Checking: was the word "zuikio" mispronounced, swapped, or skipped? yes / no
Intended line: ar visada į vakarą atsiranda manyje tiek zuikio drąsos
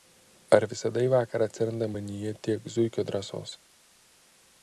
no